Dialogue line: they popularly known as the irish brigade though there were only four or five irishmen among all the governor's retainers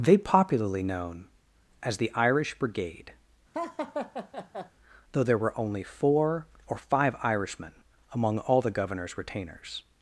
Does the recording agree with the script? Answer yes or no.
yes